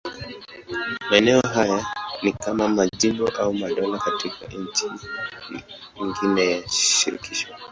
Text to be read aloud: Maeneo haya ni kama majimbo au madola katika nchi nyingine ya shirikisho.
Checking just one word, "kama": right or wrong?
right